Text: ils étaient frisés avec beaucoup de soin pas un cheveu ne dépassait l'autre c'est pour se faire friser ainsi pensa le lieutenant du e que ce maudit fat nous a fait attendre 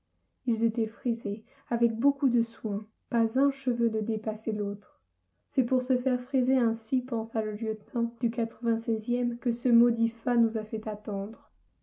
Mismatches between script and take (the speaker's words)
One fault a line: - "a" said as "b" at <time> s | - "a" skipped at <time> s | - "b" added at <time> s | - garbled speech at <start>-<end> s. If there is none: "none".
none